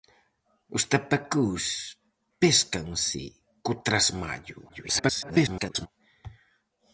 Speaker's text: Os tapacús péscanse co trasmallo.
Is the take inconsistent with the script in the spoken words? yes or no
yes